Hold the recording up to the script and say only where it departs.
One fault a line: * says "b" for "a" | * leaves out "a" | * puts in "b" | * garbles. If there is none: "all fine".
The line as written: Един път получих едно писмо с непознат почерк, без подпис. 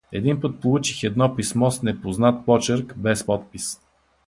all fine